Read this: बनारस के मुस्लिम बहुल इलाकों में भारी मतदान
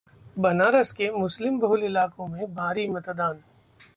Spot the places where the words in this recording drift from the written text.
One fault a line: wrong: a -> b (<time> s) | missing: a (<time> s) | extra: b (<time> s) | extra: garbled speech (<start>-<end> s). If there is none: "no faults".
no faults